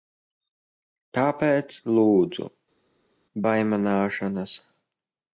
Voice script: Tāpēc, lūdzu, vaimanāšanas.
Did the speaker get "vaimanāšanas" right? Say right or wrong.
right